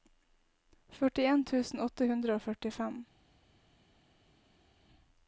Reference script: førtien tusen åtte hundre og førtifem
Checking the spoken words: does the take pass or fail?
pass